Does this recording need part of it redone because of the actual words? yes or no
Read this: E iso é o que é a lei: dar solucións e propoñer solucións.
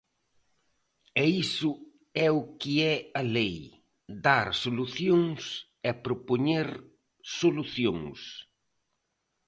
no